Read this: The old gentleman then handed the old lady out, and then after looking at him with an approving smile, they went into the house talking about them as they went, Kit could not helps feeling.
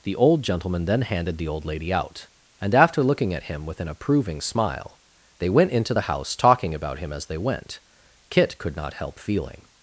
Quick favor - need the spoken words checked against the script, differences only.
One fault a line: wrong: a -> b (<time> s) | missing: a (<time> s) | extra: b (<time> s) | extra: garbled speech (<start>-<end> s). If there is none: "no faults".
missing: then (2.8 s)
wrong: them -> him (7.0 s)
wrong: helps -> help (8.9 s)